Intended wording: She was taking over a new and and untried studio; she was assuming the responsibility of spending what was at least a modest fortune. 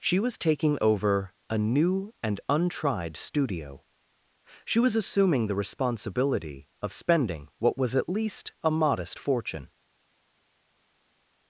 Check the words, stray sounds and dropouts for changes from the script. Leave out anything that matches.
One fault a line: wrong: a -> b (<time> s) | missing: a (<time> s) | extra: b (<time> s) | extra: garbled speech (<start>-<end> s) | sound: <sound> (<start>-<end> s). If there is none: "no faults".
missing: and (2.4 s)